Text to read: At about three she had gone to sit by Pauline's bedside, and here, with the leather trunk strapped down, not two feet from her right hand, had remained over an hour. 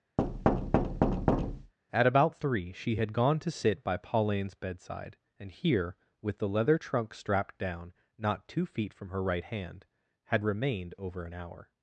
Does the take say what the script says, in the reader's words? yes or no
yes